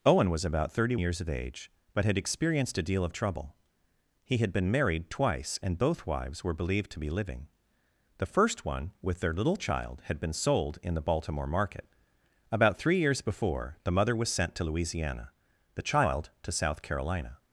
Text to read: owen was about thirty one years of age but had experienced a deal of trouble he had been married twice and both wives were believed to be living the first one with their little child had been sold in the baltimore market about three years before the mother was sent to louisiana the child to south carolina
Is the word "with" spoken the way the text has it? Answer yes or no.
yes